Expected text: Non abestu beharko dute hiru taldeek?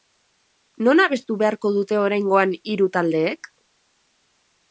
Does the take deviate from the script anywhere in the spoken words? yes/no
yes